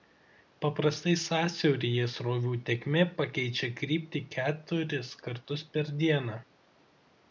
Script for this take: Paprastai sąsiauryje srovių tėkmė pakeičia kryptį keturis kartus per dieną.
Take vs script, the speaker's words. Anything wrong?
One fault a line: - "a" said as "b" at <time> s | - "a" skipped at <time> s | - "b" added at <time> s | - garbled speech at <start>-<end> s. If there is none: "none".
none